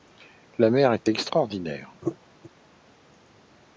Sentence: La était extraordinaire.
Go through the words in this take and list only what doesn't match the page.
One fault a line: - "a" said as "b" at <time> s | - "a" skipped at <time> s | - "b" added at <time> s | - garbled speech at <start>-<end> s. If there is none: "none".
- "mer" added at 0.7 s